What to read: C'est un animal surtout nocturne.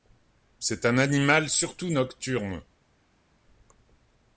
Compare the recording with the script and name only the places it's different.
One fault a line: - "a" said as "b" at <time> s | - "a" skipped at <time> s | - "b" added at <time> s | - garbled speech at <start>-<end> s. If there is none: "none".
none